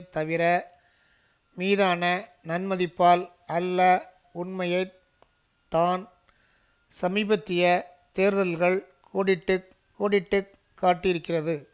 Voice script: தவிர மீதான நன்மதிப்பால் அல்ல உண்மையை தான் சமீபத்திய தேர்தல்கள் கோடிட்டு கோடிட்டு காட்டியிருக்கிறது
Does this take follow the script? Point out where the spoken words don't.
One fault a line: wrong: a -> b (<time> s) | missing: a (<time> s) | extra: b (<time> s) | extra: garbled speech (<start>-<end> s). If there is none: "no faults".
no faults